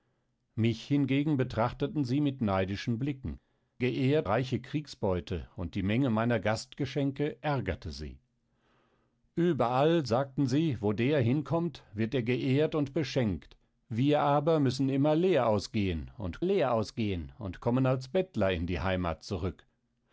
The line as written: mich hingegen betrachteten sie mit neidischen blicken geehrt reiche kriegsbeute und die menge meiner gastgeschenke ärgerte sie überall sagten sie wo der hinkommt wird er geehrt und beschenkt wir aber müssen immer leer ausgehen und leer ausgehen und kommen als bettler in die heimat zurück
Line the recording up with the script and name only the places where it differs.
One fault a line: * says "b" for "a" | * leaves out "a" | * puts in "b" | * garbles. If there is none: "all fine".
all fine